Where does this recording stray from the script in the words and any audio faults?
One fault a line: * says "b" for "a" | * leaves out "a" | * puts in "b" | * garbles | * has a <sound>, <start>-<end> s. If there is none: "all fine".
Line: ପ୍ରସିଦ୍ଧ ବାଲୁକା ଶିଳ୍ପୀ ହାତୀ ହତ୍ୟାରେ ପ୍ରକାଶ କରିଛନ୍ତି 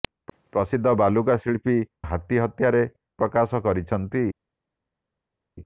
all fine